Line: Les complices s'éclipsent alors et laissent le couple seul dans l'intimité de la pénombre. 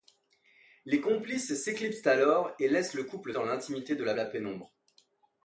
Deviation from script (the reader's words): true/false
true